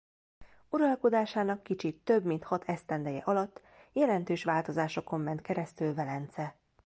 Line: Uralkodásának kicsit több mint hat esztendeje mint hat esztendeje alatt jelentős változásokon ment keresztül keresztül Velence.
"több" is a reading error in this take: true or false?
false